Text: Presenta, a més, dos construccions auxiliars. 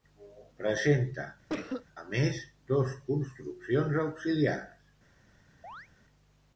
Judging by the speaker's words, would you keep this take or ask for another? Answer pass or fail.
pass